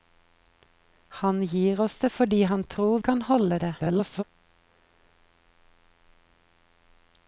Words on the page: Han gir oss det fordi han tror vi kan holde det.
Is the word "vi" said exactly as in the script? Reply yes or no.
no